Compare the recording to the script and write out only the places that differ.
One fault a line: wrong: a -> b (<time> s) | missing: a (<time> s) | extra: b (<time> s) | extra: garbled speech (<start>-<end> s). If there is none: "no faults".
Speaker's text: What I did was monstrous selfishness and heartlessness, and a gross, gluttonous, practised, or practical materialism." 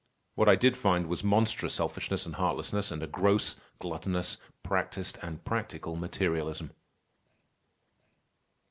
extra: find (0.8 s)
wrong: or -> and (5.2 s)